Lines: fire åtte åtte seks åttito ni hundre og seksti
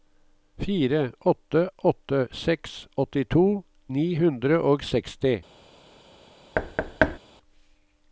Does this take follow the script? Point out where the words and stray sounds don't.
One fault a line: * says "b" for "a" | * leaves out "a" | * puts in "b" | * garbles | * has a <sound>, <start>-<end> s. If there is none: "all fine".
* has a thud, 6.5-7.2 s